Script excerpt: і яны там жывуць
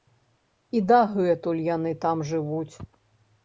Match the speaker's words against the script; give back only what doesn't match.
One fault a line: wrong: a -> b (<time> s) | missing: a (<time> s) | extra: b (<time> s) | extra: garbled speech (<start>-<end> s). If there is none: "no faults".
extra: дагэтуль (0.9 s)